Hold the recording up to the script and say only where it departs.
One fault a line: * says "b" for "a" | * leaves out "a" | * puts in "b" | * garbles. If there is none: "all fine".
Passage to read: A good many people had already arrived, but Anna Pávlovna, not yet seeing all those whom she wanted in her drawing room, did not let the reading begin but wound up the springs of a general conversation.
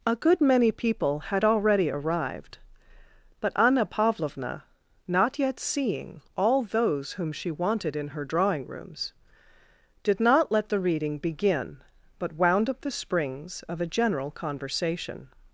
* says "rooms" for "room"